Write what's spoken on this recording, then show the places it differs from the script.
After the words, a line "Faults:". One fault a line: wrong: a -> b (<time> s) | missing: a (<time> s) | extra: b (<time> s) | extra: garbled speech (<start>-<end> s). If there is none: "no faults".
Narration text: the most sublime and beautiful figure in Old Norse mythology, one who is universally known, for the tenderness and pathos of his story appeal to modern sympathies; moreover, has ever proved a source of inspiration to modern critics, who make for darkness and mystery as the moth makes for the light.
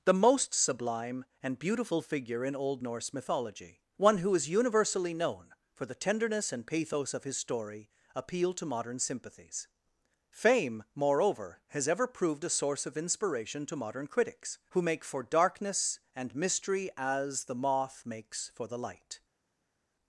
the most sublime and beautiful figure in Old Norse mythology, one who is universally known, for the tenderness and pathos of his story appeal to modern sympathies; fame moreover, has ever proved a source of inspiration to modern critics, who make for darkness and mystery as the moth makes for the light.
Faults:
extra: fame (10.3 s)